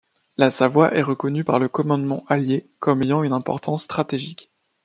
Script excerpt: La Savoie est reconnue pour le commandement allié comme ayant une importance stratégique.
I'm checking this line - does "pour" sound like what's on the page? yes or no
no